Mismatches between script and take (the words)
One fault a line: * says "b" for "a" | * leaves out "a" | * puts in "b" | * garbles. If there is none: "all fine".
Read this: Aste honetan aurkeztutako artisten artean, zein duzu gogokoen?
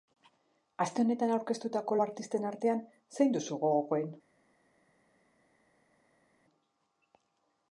all fine